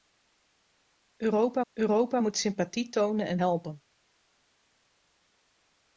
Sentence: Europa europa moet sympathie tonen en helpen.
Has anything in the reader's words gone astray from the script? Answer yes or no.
no